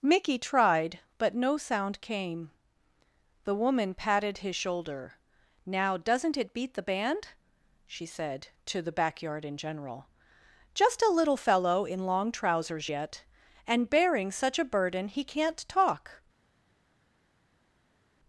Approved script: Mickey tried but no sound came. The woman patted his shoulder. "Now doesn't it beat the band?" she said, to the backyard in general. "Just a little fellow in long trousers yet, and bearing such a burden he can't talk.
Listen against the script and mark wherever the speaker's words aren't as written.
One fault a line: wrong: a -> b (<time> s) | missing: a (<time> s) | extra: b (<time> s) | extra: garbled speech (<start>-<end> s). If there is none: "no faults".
no faults